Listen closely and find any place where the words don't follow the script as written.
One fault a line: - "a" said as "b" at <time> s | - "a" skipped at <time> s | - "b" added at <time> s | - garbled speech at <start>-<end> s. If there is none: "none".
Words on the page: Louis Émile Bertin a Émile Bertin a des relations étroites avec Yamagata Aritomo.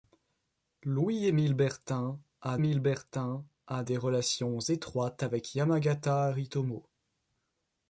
none